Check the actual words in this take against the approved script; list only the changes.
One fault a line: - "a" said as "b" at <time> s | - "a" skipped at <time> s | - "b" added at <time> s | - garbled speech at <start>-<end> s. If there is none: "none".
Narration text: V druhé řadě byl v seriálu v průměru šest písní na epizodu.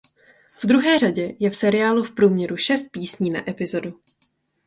- "byl" said as "je" at 1.4 s